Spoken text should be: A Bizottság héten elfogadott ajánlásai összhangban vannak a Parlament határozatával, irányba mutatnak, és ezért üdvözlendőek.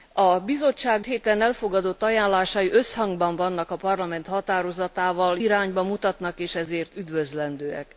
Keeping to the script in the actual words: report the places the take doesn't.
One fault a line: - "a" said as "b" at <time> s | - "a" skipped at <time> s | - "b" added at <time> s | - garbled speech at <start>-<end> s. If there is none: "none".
none